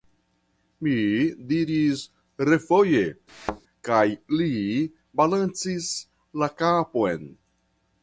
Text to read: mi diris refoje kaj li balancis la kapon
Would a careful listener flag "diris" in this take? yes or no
no